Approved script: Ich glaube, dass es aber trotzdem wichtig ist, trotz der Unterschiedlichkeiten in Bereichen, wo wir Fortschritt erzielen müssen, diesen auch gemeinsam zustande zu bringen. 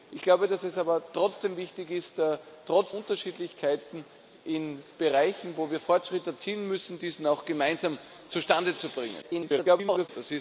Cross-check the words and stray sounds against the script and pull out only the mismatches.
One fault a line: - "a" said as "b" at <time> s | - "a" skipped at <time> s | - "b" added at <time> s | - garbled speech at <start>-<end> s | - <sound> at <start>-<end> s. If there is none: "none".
- "der" skipped at 2.9 s
- garbled speech at 9.2-10.1 s